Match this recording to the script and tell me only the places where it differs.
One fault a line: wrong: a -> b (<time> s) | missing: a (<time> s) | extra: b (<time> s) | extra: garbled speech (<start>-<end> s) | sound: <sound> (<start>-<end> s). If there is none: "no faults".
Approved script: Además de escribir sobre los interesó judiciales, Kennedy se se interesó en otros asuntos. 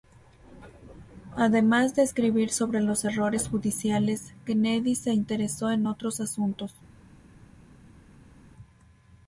wrong: interesó -> errores (3.0 s)
missing: se (5.1 s)